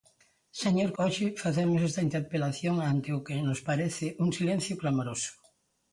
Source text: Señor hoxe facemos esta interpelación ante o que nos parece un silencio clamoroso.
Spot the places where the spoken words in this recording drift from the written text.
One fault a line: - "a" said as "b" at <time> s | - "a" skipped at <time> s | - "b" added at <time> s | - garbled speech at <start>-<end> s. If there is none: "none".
none